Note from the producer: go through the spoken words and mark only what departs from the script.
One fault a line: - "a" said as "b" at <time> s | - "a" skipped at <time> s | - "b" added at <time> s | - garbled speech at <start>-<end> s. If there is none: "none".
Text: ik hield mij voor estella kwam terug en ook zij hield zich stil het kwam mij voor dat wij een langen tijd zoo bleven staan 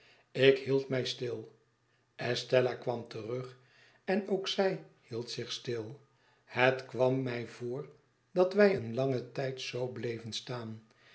- "voor" said as "stil" at 1.0 s